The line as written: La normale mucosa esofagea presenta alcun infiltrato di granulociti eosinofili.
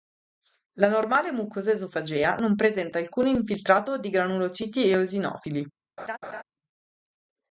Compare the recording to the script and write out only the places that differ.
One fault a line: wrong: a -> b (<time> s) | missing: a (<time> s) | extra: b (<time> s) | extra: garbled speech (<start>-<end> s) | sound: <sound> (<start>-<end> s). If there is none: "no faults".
extra: non (2.4 s)
sound: laugh (6.0-6.4 s)